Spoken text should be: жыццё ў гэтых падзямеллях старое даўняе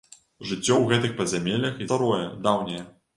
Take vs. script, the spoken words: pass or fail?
pass